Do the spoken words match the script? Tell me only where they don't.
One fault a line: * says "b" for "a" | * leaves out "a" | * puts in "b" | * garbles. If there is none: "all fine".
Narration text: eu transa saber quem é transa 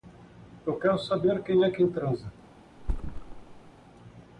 * says "quero" for "transa"
* puts in "quem"